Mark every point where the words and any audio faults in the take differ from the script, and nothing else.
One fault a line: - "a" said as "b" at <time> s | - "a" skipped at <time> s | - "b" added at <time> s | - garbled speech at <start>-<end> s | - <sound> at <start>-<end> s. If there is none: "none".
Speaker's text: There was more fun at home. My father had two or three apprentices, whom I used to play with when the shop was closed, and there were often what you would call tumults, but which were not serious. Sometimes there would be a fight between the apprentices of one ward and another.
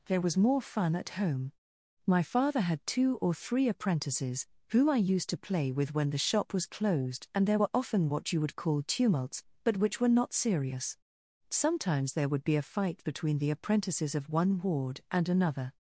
none